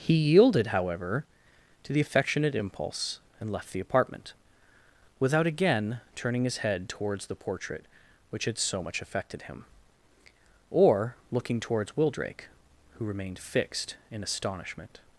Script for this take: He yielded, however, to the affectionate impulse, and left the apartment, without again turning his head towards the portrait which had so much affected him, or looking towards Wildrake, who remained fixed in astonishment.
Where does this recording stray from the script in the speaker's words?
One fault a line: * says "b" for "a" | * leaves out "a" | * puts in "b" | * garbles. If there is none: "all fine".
all fine